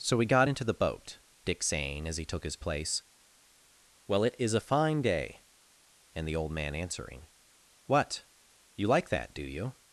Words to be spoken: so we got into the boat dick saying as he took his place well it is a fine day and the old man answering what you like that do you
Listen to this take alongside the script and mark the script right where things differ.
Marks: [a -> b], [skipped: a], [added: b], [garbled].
so we got into the boat dick saying as he took his place well it is a fine day and the old man answering what you like that do you